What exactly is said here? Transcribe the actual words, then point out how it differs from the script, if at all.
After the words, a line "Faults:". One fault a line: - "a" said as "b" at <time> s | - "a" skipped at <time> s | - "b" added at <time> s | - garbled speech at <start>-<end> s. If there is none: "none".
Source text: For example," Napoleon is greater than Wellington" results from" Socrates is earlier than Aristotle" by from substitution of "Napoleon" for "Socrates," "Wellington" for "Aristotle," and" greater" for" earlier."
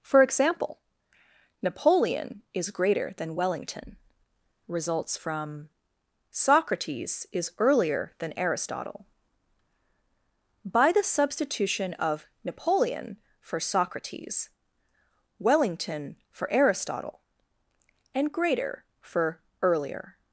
For example," Napoleon is greater than Wellington" results from" Socrates is earlier than Aristotle" by the substitution of "Napoleon" for "Socrates," "Wellington" for "Aristotle," and" greater" for" earlier."
Faults:
- "from" said as "the" at 10.9 s